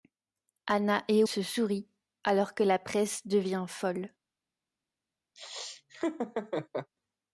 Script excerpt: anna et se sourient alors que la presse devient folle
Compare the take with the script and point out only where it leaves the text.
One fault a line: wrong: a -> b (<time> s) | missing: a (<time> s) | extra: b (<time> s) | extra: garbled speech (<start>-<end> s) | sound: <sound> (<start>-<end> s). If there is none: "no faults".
sound: laugh (5.4-6.9 s)